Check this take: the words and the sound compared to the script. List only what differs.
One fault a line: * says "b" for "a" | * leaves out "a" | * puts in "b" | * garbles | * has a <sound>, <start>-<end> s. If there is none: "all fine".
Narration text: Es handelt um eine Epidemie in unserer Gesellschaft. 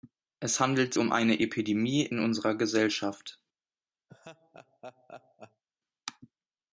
* has a laugh, 4.1-5.6 s